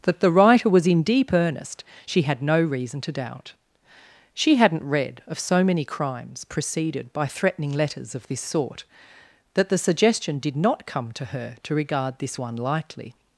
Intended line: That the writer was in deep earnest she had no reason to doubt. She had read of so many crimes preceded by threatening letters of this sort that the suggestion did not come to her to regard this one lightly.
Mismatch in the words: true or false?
true